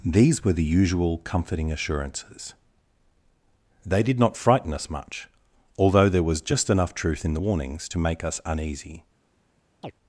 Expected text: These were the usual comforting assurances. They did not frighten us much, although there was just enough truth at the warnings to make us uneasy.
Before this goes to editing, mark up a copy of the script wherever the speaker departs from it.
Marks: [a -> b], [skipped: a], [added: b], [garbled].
These were the usual comforting assurances. They did not frighten us much, although there was just enough truth [at -> in] the warnings to make us uneasy.